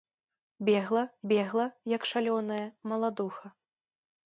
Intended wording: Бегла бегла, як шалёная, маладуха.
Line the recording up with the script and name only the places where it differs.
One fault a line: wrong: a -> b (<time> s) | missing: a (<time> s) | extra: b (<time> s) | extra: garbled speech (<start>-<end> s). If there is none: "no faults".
no faults